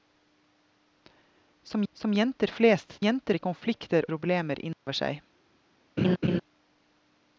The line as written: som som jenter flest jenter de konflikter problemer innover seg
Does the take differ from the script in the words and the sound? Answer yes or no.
yes